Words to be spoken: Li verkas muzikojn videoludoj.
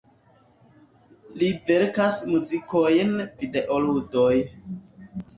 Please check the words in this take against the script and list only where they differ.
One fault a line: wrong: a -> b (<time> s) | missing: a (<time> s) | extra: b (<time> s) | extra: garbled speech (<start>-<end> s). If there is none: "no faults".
no faults